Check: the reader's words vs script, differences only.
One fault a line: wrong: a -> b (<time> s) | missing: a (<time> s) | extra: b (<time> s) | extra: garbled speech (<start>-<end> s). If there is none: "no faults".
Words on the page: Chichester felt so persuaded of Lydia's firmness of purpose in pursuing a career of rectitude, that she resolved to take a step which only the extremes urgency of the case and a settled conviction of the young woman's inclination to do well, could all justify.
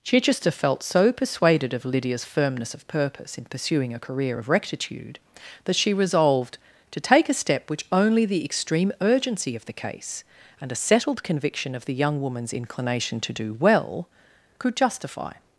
wrong: extremes -> extreme (8.5 s)
missing: all (14.7 s)